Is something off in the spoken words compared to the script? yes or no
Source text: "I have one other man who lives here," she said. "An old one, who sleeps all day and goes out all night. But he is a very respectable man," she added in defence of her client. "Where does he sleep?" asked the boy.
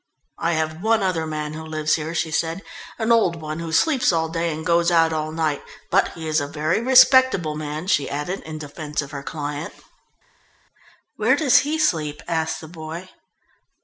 no